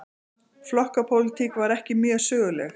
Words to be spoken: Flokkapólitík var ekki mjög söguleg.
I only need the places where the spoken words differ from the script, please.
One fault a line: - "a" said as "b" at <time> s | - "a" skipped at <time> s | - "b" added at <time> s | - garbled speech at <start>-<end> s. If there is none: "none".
none